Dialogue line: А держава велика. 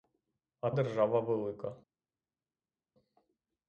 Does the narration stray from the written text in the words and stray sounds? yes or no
no